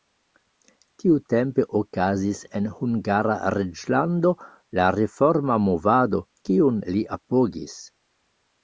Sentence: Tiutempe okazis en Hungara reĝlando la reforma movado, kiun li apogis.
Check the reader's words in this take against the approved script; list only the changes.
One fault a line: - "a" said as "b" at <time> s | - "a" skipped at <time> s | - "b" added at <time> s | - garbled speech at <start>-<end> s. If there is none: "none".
none